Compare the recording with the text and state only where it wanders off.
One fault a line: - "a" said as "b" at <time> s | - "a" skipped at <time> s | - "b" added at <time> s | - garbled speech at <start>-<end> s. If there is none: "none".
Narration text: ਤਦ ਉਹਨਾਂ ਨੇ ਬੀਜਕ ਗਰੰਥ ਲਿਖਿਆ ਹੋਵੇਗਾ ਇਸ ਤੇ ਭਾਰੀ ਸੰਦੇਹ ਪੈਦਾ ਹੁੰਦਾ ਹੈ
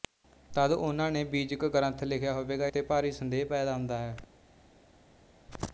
- "ਇਸ" skipped at 2.7 s